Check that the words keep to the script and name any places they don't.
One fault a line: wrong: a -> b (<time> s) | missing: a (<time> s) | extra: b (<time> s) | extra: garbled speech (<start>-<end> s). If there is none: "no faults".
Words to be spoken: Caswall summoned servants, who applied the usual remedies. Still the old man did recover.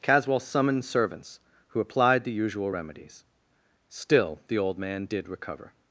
no faults